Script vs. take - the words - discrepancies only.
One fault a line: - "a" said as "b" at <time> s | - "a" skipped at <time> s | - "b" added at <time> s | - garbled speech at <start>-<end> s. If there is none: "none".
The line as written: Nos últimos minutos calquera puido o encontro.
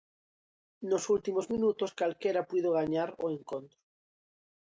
- "gañar" added at 2.8 s